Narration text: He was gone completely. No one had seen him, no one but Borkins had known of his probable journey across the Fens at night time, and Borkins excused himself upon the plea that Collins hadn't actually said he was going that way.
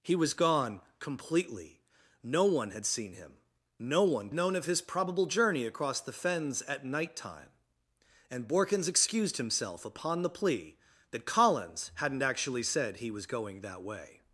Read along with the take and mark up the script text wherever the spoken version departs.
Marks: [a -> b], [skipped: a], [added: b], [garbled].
He was gone completely. No one had seen him, no one [skipped: but Borkins had] known of his probable journey across the Fens at night time, and Borkins excused himself upon the plea that Collins hadn't actually said he was going that way.